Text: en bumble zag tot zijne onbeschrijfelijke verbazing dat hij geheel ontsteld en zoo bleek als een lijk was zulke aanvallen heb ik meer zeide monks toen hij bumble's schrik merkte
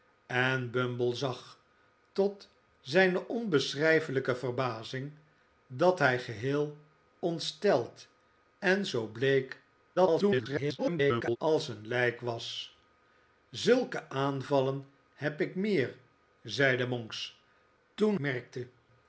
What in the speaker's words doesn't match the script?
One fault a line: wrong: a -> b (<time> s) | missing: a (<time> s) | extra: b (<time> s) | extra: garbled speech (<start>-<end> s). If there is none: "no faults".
extra: garbled speech (10.0-11.4 s)
missing: hij bumble's schrik (18.2 s)